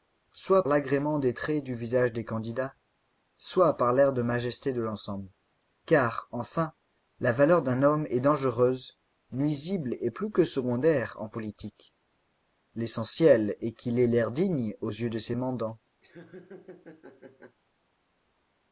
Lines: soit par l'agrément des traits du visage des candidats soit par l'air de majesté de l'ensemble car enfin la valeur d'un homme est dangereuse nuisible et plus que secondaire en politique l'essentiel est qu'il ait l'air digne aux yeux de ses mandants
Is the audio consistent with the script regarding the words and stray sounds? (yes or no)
no